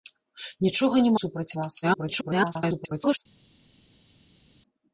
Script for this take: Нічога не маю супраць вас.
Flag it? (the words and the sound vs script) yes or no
yes